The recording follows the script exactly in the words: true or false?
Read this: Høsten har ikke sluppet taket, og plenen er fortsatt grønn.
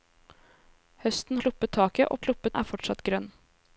false